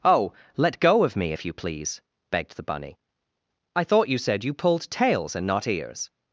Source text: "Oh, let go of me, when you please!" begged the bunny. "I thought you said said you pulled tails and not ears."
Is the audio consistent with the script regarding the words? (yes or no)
no